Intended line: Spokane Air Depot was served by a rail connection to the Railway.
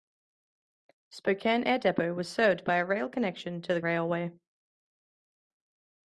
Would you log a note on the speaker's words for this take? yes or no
no